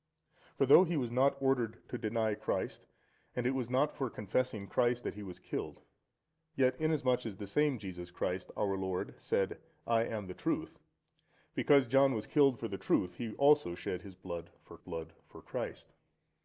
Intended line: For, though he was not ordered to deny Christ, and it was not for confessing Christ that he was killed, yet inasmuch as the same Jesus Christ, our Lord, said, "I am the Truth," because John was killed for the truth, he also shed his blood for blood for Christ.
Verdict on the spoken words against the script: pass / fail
pass